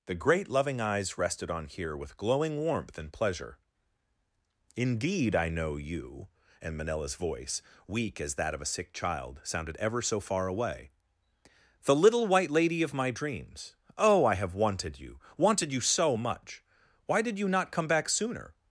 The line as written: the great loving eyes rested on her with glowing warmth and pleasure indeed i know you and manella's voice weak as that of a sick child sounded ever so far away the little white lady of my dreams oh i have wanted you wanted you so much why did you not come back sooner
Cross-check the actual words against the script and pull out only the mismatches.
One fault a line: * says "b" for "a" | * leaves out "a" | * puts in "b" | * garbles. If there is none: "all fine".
* says "here" for "her"